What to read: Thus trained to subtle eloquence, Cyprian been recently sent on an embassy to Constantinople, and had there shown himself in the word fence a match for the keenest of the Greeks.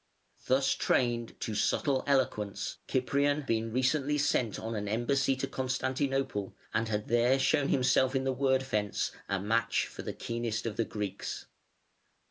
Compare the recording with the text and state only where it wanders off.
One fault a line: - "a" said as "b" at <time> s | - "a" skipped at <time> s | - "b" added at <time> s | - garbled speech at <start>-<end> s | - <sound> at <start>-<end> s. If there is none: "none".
none